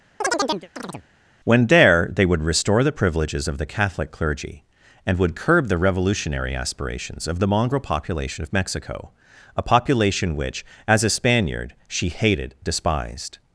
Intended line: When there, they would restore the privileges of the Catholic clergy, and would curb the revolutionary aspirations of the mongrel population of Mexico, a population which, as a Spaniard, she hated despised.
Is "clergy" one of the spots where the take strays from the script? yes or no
no